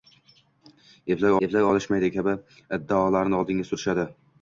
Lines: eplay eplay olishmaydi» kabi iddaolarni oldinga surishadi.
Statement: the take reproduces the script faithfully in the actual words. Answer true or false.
true